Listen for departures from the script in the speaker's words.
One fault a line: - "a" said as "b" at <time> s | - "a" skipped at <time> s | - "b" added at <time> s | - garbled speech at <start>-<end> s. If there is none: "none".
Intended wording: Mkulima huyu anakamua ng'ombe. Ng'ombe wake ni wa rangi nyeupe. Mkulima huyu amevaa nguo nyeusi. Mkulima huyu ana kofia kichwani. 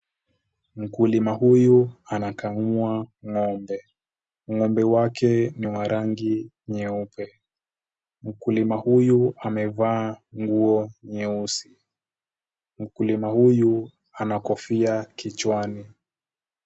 none